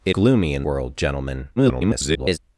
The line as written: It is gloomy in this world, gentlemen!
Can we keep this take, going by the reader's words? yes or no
no